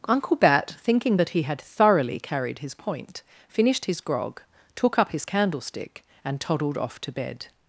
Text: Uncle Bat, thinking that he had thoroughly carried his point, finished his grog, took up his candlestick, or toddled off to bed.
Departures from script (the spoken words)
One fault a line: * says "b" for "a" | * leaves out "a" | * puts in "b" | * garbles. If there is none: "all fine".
* says "and" for "or"